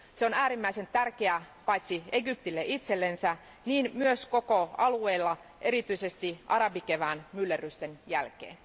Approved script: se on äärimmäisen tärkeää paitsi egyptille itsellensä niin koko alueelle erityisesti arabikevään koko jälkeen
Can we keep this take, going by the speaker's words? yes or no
no